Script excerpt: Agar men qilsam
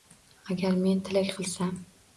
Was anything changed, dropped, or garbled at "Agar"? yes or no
no